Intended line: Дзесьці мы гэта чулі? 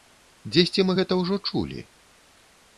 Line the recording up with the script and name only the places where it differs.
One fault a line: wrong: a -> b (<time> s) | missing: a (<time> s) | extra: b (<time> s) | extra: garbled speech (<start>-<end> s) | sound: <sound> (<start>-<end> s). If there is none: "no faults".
extra: ўжо (1.2 s)